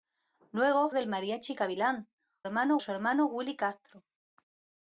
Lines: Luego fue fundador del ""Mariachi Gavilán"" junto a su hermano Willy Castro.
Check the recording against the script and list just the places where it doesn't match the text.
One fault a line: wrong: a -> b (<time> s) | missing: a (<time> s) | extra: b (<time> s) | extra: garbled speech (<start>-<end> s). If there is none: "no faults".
missing: fue fundador (0.9 s)
wrong: junto -> hermano (2.4 s)